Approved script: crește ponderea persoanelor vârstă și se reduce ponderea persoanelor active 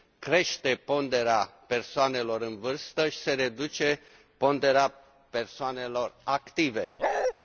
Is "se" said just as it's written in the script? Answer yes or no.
yes